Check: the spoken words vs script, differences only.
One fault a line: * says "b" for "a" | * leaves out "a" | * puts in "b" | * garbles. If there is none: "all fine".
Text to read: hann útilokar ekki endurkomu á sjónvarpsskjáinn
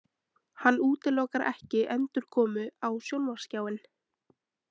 all fine